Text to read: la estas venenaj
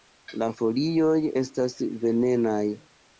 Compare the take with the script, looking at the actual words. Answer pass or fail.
fail